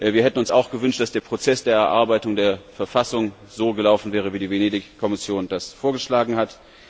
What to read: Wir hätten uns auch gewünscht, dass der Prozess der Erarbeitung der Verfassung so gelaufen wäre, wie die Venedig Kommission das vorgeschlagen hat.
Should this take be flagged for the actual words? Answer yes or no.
no